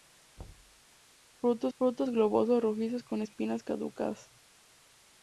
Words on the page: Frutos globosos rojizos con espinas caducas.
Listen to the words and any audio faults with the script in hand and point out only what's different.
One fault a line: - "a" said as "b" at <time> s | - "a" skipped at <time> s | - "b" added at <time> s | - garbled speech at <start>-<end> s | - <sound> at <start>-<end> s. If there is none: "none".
- thud at 0.4-0.8 s
- "frutos" added at 1.7 s